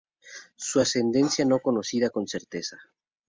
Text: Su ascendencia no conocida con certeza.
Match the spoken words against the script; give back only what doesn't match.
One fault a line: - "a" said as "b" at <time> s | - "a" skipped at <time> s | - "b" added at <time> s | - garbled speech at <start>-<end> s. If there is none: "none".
none